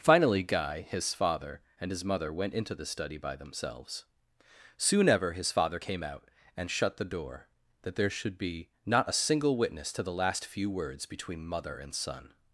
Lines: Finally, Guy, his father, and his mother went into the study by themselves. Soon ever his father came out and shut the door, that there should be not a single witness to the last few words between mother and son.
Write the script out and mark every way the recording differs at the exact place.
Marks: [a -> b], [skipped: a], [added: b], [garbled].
Finally, Guy, his father, and his mother went into the study by themselves. Soon ever his father came out and shut the door, that there should be not a single witness to the last few words between mother and son.